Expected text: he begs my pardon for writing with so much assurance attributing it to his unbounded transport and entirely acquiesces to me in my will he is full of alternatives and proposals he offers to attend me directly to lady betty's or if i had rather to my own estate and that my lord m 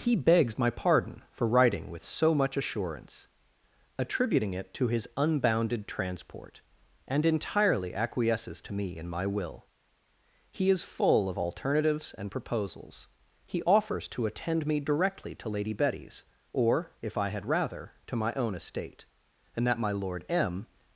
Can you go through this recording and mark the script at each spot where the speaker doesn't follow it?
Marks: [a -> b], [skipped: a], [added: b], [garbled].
he begs my pardon for writing with so much assurance attributing it to his unbounded transport and entirely acquiesces to me in my will he is full of alternatives and proposals he offers to attend me directly to lady betty's or if i had rather to my own estate and that my lord m